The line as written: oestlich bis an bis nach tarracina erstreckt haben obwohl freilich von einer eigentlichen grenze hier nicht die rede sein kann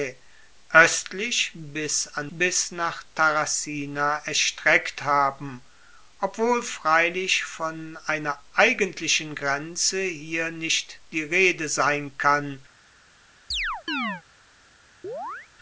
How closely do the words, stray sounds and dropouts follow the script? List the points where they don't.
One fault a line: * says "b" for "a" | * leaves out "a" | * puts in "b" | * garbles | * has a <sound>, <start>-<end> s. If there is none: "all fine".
* has a chirp, 13.5-14.2 s
* has a chirp, 15.0-15.5 s